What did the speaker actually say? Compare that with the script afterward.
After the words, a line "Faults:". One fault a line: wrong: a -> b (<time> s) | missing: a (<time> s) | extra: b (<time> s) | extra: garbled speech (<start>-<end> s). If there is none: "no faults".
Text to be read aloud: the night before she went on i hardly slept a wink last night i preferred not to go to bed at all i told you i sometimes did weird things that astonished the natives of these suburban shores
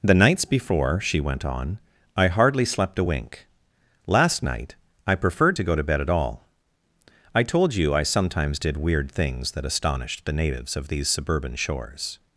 the nights before she went on i hardly slept a wink last night i preferred to go to bed at all i told you i sometimes did weird things that astonished the natives of these suburban shores
Faults:
wrong: night -> nights (0.1 s)
missing: not (5.6 s)